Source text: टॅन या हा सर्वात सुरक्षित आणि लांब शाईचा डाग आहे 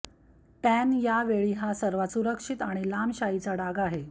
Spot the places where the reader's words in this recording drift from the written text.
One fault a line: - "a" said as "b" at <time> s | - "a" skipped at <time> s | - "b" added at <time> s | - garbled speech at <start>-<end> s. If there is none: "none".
- "वेळी" added at 1.2 s